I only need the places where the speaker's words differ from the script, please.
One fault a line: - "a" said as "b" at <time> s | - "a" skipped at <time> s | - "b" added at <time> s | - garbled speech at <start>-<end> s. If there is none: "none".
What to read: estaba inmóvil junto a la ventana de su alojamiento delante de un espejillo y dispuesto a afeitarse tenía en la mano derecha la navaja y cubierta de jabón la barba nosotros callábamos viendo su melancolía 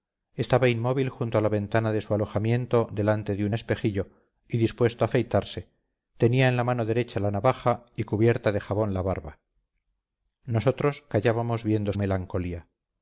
- "su" skipped at 11.9 s